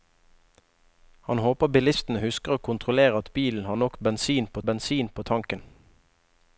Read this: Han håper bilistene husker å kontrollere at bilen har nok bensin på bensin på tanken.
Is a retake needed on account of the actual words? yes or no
no